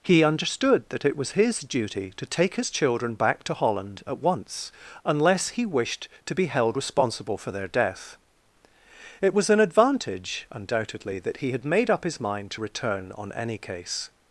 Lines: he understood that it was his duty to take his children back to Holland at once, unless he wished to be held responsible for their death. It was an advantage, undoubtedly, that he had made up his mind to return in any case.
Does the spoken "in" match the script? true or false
false